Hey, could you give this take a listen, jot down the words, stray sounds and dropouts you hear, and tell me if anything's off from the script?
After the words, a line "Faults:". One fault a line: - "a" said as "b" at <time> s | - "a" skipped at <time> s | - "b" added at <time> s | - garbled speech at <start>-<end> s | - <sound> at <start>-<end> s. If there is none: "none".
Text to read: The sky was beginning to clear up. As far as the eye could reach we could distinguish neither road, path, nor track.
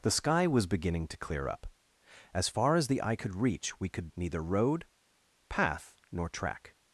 The sky was beginning to clear up. As far as the eye could reach we could neither road, path, nor track.
Faults:
- "distinguish" skipped at 4.1 s